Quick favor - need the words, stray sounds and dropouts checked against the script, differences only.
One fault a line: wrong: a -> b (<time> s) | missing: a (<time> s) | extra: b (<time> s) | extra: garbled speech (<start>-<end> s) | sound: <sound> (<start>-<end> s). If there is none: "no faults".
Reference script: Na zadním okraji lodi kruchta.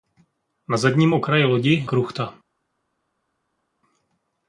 no faults